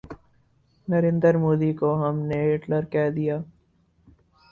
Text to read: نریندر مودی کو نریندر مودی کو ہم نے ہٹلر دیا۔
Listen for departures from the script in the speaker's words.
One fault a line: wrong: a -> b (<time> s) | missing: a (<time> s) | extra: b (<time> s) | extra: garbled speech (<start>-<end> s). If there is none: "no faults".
missing: نریندر مودی کو (1.9 s)
extra: کہہ (2.9 s)